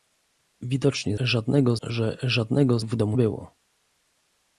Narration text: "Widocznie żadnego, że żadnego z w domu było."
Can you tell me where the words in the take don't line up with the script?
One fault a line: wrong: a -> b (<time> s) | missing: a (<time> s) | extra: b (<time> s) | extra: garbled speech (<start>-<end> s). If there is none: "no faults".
no faults